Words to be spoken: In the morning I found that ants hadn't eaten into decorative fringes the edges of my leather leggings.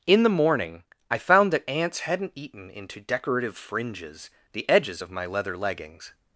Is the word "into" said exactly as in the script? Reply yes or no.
yes